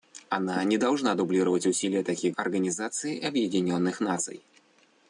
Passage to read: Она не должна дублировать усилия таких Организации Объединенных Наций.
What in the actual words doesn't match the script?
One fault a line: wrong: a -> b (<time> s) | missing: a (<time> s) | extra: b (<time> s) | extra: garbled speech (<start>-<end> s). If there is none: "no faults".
no faults